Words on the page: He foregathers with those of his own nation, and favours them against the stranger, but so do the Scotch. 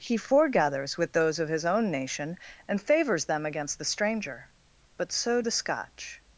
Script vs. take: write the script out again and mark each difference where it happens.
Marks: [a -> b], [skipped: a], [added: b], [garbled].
He foregathers with those of his own nation, and favours them against the stranger, but so [skipped: do] the Scotch.